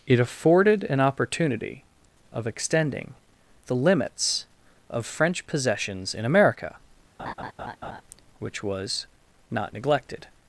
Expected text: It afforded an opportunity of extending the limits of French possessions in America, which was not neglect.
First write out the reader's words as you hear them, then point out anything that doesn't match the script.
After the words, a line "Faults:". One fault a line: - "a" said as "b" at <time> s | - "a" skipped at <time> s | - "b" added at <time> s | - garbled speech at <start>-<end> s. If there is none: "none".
It afforded an opportunity of extending the limits of French possessions in America, which was not neglected.
Faults:
- "neglect" said as "neglected" at 9.7 s